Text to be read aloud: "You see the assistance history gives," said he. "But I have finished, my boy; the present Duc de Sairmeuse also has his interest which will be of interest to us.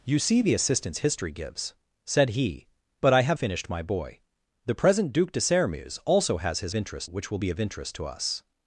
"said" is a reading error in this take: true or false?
false